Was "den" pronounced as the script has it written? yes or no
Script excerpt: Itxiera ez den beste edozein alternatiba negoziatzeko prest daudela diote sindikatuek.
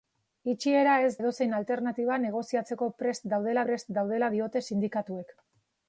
no